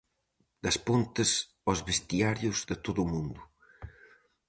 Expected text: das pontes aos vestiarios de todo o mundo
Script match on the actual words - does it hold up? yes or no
yes